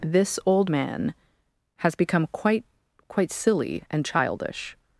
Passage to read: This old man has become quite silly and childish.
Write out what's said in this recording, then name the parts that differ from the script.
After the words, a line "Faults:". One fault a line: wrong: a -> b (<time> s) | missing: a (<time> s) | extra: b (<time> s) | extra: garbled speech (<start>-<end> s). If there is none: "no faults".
This old man has become quite quite silly and childish.
Faults:
extra: quite (3.1 s)